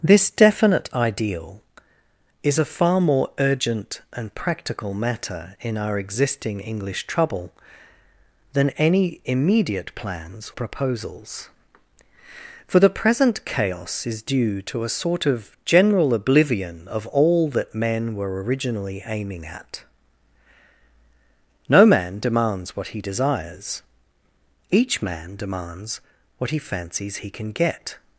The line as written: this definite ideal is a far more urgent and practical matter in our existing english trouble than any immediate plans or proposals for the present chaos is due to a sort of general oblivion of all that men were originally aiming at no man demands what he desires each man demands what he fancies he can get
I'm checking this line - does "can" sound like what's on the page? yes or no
yes